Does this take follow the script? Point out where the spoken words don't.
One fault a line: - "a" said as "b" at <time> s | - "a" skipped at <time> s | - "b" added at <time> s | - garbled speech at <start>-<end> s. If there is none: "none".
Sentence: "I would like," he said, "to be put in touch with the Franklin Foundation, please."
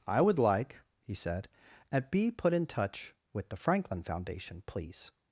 - "to" said as "at" at 1.9 s